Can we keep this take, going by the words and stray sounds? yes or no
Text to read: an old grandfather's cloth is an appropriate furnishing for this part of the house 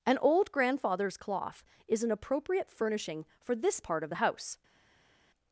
yes